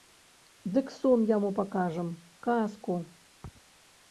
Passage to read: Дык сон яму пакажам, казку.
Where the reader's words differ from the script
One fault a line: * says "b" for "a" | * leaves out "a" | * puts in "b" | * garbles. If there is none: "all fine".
all fine